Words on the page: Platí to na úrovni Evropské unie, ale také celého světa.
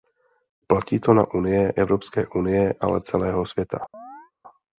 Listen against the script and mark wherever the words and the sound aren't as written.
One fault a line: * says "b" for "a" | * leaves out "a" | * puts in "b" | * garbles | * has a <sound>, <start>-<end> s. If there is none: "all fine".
* says "unie" for "úrovni"
* leaves out "také"
* has a chirp, 3.9-4.3 s